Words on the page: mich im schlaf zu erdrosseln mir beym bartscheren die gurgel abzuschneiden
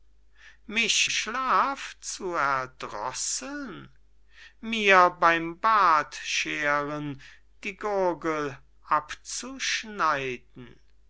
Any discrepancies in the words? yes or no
yes